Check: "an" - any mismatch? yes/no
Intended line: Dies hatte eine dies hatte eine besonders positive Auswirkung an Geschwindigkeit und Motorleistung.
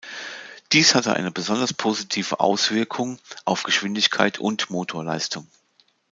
yes